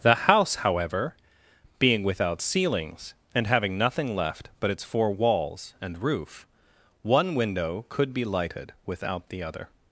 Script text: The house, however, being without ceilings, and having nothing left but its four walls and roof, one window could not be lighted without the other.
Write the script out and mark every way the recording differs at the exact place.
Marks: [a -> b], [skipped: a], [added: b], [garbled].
The house, however, being without ceilings, and having nothing left but its four walls and roof, one window could [skipped: not] be lighted without the other.